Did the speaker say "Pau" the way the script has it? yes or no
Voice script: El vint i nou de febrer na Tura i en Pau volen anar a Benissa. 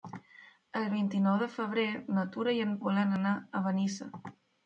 no